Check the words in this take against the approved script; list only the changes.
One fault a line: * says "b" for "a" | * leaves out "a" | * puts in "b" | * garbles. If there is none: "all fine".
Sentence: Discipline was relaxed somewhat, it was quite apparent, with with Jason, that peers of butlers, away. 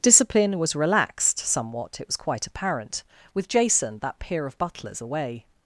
* leaves out "with"
* says "peer" for "peers"